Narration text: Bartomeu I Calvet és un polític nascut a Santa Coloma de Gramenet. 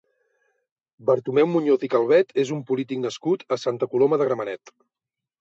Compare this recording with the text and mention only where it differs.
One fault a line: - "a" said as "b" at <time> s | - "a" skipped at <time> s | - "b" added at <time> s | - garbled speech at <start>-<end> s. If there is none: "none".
- "Muñoz" added at 1.5 s